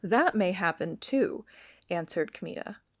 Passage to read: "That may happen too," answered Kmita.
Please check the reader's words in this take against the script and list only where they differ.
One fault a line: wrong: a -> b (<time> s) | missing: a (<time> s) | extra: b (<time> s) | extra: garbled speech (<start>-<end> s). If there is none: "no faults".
no faults